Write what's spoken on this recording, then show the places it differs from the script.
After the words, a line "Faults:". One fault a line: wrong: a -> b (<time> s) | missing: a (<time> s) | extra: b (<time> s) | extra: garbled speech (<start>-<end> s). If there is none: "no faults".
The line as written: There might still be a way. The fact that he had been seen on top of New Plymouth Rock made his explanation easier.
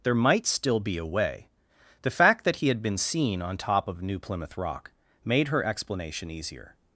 There might still be a way. The fact that he had been seen on top of New Plymouth Rock made her explanation easier.
Faults:
wrong: his -> her (5.5 s)